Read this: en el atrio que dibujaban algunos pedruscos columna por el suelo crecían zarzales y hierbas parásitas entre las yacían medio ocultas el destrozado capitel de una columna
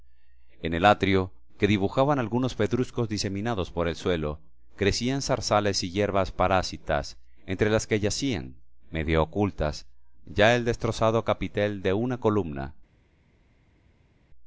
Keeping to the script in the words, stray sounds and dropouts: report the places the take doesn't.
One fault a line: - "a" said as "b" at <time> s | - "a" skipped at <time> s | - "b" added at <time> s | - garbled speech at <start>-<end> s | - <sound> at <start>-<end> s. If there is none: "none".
- "columna" said as "diseminados" at 3.1 s
- "que" added at 7.9 s
- "ya" added at 10.3 s